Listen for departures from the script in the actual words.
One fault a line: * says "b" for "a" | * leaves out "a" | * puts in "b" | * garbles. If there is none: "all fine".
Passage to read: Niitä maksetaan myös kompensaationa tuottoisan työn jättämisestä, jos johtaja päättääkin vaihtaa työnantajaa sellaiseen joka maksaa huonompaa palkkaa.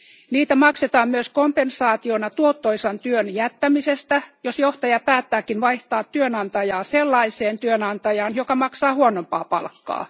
* puts in "työnantajaan"